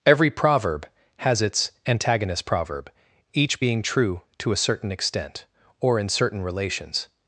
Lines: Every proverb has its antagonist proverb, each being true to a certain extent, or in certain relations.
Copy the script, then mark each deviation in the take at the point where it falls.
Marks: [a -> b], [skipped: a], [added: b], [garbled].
Every proverb has its antagonist proverb, each being true to a certain extent, or in certain relations.